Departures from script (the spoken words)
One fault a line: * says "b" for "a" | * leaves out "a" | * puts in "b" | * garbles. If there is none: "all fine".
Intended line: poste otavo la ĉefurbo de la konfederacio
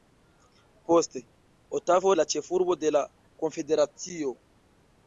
all fine